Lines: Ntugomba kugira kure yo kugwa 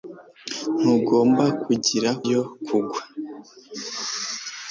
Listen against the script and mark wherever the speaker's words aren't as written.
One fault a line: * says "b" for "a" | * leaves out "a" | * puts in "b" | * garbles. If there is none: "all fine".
* leaves out "kure"